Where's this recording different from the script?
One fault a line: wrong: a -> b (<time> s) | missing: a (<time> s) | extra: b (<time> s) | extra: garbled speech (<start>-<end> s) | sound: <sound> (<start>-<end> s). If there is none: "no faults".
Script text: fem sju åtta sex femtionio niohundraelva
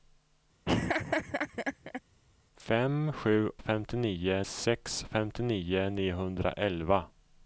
sound: laugh (0.6-2.0 s)
wrong: åtta -> femtionio (3.6 s)